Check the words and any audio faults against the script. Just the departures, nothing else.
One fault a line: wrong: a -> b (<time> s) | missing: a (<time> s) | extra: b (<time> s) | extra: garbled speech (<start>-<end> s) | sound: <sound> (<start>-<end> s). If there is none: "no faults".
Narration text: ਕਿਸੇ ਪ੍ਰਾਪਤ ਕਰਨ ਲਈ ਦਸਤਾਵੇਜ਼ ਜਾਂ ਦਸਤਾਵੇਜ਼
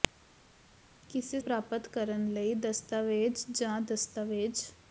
no faults